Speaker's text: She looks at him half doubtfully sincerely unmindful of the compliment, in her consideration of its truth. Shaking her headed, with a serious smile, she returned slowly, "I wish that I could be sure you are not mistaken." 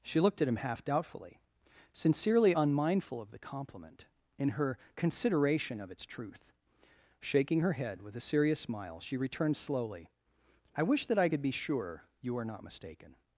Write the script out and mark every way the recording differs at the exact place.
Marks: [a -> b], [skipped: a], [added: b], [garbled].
She [looks -> looked] at him half doubtfully sincerely unmindful of the compliment, in her consideration of its truth. Shaking her [headed, -> head] with a serious smile, she returned slowly, "I wish that I could be sure you are not mistaken."